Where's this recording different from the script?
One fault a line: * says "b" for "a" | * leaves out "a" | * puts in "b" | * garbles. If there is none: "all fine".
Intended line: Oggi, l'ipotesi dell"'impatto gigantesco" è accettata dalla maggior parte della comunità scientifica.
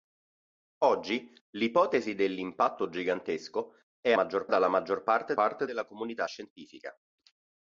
* says "maggior" for "accettata"
* puts in "parte"